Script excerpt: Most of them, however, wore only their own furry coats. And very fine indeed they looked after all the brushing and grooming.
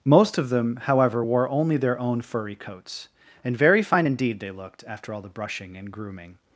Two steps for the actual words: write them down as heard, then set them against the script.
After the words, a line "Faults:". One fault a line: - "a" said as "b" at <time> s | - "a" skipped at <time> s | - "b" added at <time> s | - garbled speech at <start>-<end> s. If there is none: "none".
Most of them, however, wore only their own furry coats. And very fine indeed they looked after all the brushing and grooming.
Faults:
none